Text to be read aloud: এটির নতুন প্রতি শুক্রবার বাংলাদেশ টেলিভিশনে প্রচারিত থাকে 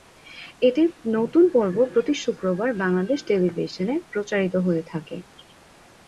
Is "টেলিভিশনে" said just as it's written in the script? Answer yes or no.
yes